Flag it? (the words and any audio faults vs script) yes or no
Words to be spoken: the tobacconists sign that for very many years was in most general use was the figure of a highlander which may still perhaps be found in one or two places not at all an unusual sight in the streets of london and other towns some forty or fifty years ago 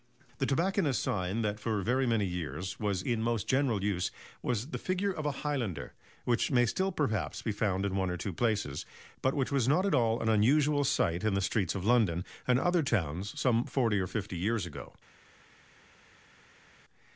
yes